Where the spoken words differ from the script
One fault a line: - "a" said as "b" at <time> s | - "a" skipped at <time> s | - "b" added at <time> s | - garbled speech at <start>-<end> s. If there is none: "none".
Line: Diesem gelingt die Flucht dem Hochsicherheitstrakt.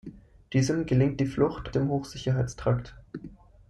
none